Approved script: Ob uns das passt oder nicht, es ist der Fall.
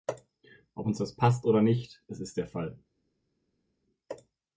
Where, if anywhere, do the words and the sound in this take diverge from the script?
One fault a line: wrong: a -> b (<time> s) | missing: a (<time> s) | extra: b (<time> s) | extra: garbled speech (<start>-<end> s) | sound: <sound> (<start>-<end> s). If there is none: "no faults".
no faults